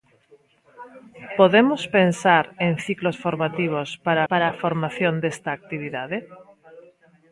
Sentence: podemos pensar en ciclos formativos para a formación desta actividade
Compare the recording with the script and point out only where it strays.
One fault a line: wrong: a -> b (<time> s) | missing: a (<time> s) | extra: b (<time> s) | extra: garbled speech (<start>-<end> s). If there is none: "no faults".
extra: para (4.3 s)